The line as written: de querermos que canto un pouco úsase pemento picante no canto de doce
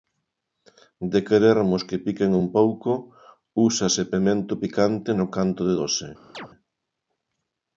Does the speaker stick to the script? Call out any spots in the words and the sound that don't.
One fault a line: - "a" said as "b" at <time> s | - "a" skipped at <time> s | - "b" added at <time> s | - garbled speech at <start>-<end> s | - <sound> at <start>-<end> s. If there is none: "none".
- "canto" said as "piquen" at 2.0 s
- chirp at 6.3-6.5 s